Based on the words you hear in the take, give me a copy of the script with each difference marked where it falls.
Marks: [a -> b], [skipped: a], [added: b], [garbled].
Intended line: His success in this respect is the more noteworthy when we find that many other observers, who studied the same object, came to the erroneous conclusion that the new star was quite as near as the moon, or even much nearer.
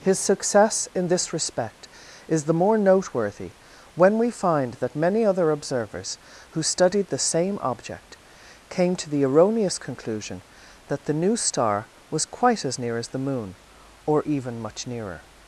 His success in this respect is the more noteworthy when we find that many other observers, who studied the same object, came to the erroneous conclusion that the new star was quite as near as the moon, or even much nearer.